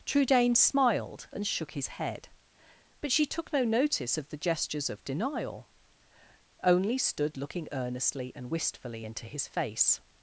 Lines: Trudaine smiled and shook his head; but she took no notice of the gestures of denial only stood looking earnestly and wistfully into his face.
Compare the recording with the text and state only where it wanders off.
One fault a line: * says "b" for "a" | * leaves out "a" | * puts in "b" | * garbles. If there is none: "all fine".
all fine